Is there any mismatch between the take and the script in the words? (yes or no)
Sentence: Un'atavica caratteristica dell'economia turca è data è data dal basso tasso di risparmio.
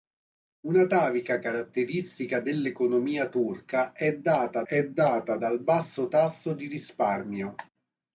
no